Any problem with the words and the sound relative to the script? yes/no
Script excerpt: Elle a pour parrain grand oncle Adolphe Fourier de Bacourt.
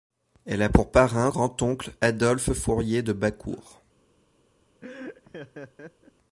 yes